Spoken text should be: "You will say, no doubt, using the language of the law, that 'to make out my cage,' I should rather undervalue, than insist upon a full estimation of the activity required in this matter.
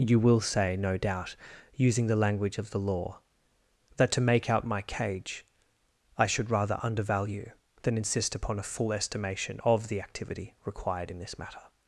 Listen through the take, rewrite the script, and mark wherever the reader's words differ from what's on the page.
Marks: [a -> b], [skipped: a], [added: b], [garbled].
"You will say, no doubt, using the language of the law, that 'to make out my cage,' I should rather undervalue, than insist upon a full estimation of the activity required in this matter.